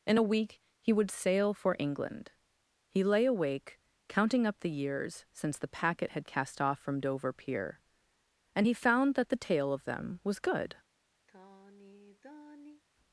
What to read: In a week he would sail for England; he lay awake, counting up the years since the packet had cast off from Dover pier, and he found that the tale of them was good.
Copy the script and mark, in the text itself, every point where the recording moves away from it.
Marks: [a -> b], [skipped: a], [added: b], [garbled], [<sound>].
In a week he would sail for England; he lay awake, counting up the years since the packet had cast off from Dover pier, and he found that the tale of them was good. [sigh]